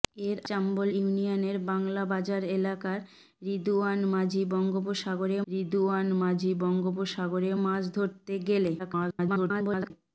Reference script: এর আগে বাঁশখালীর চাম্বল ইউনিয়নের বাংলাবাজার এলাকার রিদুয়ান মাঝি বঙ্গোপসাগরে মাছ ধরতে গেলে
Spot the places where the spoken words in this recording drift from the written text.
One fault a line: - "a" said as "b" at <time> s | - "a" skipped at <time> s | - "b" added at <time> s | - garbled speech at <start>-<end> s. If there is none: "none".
- "আগে বাঁশখালীর" skipped at 0.4 s
- "রিদুয়ান মাঝি বঙ্গোপসাগরে" added at 5.5 s
- garbled speech at 8.8-9.9 s